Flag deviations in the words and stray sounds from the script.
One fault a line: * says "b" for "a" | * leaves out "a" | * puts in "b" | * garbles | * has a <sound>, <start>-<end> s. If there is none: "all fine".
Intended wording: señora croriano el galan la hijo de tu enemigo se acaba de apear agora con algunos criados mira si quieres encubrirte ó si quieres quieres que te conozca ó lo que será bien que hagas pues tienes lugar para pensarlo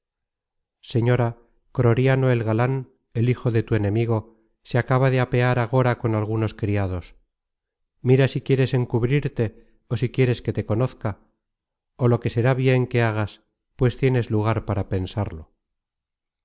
* says "el" for "la"
* leaves out "quieres"